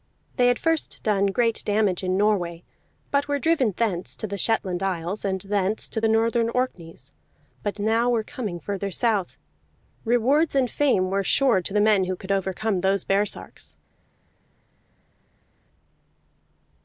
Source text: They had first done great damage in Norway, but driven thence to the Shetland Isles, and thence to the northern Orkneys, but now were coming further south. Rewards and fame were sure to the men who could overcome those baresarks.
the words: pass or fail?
fail